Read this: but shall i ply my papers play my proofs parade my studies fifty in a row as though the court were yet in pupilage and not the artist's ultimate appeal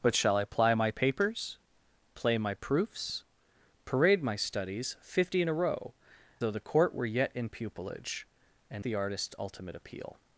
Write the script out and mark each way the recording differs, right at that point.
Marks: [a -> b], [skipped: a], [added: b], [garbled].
but shall i ply my papers play my proofs parade my studies fifty in a row [skipped: as] though the court were yet in pupilage and [skipped: not] the artist's ultimate appeal